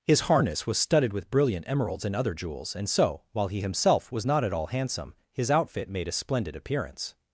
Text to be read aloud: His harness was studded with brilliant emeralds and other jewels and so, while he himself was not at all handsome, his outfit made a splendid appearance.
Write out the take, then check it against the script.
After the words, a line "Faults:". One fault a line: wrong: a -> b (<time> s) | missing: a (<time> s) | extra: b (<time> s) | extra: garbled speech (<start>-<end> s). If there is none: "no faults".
His harness was studded with brilliant emeralds and other jewels and so, while he himself was not at all handsome, his outfit made a splendid appearance.
Faults:
no faults